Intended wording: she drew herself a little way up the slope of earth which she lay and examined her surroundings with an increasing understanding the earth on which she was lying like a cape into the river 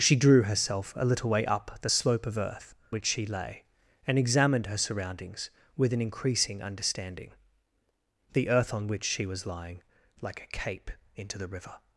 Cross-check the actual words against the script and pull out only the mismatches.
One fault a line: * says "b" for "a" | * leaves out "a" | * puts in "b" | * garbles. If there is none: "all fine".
all fine